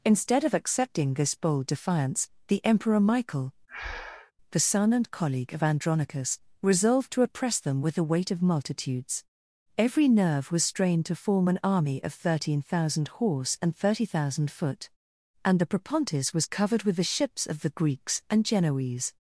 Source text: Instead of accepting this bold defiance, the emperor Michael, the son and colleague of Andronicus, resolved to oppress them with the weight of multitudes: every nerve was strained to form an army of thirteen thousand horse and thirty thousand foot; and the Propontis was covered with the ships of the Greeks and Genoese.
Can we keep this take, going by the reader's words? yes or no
yes